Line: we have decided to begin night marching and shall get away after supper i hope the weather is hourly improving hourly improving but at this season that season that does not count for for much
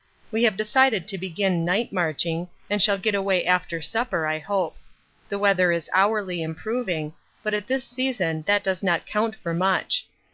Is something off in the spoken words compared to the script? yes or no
yes